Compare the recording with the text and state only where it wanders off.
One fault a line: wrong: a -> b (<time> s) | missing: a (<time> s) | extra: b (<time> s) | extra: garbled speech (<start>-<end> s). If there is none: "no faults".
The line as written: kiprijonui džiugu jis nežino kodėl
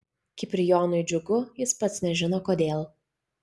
extra: pats (1.9 s)